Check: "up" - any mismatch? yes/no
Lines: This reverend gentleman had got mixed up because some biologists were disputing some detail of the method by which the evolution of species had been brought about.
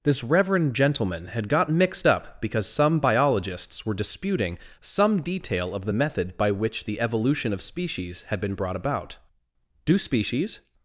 no